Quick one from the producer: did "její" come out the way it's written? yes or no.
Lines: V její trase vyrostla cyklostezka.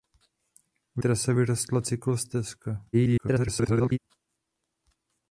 no